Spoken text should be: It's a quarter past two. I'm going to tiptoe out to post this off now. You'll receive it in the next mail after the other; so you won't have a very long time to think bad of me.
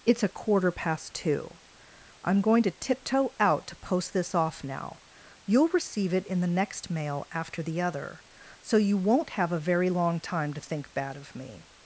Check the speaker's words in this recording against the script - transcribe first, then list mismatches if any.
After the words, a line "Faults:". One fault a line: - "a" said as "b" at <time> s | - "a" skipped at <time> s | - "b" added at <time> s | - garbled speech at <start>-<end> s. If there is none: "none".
It's a quarter past two. I'm going to tiptoe out to post this off now. You'll receive it in the next mail after the other; so you won't have a very long time to think bad of me.
Faults:
none